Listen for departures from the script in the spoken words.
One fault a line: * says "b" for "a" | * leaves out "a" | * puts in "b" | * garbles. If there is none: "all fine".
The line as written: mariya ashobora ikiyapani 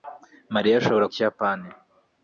all fine